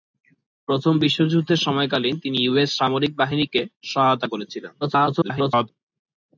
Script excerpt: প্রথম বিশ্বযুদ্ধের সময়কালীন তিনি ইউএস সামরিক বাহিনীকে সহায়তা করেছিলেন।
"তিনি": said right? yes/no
yes